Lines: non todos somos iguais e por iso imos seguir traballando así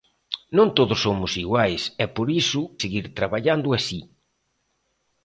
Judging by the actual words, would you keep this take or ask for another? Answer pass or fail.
fail